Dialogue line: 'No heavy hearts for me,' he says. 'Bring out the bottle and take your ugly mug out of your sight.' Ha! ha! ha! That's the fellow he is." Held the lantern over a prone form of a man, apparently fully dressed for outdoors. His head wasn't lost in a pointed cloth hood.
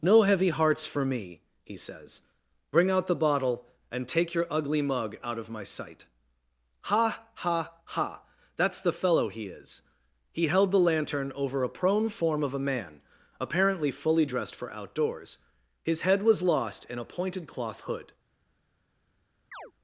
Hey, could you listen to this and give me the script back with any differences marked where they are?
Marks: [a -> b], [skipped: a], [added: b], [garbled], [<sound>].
'No heavy hearts for me,' he says. 'Bring out the bottle and take your ugly mug out of [your -> my] sight.' Ha! ha! ha! That's the fellow he is." [added: He] Held the lantern over a prone form of a man, apparently fully dressed for outdoors. His head [wasn't -> was] lost in a pointed cloth hood. [chirp]